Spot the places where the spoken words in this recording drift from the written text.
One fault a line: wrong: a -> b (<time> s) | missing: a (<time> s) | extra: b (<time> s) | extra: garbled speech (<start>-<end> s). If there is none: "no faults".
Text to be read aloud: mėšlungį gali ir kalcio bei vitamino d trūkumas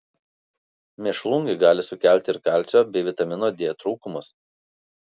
extra: sukelti (1.9 s)